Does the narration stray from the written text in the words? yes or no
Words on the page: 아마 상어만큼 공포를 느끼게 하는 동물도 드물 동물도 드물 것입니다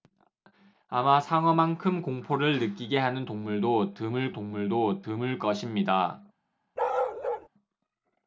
no